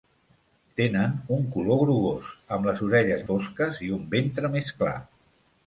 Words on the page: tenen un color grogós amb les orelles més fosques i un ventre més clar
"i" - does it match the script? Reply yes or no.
yes